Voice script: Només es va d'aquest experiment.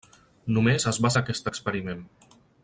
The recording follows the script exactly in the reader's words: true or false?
true